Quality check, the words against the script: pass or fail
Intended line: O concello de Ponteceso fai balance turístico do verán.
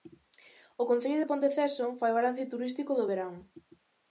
pass